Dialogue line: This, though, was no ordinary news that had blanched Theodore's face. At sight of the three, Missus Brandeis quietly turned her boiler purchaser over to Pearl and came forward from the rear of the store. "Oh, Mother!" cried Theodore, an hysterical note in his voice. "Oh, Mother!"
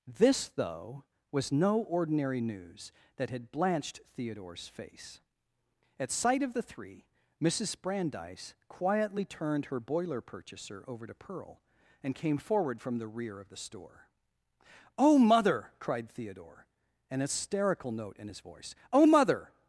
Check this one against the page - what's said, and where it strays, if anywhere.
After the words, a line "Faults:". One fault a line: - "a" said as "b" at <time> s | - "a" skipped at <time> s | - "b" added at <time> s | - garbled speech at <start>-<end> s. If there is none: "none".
This, though, was no ordinary news that had blanched Theodore's face. At sight of the three, Missus Brandeis quietly turned her boiler purchaser over to Pearl and came forward from the rear of the store. "Oh, Mother!" cried Theodore, an hysterical note in his voice. "Oh, Mother!"
Faults:
none